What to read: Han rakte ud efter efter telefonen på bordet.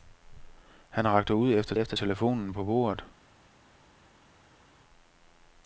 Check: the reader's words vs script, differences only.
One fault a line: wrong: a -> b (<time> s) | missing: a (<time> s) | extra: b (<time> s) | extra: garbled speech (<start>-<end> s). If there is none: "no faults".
no faults